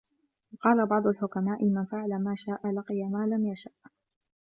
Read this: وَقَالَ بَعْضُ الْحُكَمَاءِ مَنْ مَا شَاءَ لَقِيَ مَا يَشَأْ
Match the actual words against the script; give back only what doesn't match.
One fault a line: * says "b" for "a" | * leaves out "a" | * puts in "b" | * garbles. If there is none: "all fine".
* puts in "فَعَلَ"
* puts in "لَمْ"